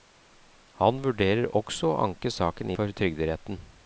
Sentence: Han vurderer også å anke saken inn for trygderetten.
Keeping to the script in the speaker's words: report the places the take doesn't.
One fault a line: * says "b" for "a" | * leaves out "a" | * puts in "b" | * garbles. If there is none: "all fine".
* leaves out "inn"